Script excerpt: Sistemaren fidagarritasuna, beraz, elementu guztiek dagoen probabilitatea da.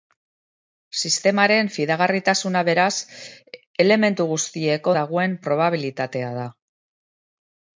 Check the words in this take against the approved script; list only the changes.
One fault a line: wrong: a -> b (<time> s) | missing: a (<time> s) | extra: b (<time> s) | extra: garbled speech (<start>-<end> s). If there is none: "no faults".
no faults